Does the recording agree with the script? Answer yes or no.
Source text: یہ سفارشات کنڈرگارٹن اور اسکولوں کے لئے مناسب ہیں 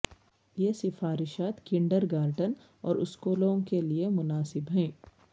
yes